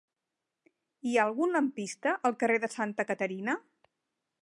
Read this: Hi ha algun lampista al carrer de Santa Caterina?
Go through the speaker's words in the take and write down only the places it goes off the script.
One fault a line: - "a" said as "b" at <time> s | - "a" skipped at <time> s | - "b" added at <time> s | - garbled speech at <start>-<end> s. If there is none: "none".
none